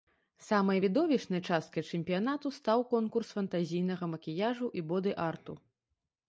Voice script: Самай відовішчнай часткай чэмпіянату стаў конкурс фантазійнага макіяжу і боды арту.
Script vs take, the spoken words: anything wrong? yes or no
no